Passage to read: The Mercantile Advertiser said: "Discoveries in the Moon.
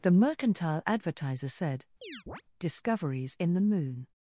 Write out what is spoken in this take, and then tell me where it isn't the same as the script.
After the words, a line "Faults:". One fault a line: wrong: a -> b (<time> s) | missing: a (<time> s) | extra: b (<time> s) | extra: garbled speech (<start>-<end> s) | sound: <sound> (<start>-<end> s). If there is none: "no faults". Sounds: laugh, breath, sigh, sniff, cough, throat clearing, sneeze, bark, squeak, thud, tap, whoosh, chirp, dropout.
The Mercantile Advertiser said: "Discoveries in the Moon.
Faults:
sound: chirp (2.0-2.4 s)